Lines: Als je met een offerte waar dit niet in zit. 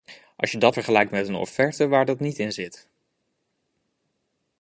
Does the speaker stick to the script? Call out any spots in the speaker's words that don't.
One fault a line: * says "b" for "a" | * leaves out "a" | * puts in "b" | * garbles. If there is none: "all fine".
* puts in "dat vergelijkt"
* says "dat" for "dit"